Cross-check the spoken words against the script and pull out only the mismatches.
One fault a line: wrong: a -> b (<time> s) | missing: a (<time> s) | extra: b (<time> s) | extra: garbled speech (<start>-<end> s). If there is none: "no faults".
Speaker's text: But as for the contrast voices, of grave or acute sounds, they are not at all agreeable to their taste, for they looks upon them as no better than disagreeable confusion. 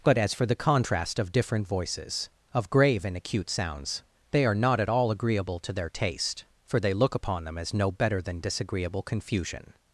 extra: of different (1.2 s)
wrong: or -> and (3.0 s)
wrong: looks -> look (6.9 s)